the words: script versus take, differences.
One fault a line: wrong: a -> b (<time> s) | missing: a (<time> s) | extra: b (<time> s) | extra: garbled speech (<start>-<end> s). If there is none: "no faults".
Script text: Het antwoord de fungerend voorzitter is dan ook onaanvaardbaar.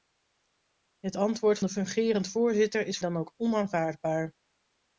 no faults